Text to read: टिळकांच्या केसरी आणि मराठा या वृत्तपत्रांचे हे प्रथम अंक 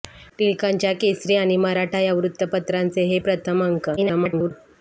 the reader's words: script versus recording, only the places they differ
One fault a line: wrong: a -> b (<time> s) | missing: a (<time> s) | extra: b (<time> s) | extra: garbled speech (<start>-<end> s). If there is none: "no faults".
extra: garbled speech (4.0-4.5 s)